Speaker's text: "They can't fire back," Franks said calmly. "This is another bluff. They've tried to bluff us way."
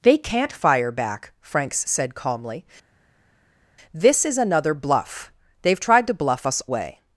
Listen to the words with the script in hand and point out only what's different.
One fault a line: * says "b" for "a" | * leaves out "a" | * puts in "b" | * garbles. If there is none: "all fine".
all fine